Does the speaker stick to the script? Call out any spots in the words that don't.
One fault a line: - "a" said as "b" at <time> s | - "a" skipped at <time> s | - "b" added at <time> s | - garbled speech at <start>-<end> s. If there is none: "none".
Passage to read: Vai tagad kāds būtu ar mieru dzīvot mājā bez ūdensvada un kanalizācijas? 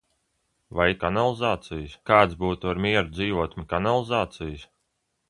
- "tagad" said as "kanalizācijas" at 1.0 s
- "mājā bez ūdensvada" skipped at 3.6 s